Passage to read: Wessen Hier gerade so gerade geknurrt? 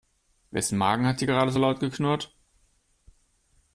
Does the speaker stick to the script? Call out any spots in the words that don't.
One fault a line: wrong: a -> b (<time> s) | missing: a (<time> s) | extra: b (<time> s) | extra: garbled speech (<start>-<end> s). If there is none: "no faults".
extra: Magen hat (0.8 s)
wrong: gerade -> laut (1.6 s)